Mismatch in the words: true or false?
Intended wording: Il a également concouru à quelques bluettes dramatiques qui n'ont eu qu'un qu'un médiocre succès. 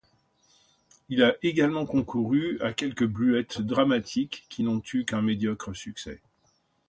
true